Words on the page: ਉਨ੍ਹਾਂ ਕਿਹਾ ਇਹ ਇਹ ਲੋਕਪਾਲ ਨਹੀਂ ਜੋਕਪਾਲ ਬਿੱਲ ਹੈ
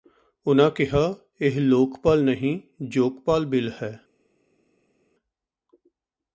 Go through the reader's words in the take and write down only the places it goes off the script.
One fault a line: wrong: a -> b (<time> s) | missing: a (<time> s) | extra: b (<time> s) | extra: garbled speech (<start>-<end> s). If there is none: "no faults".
missing: ਇਹ (1.6 s)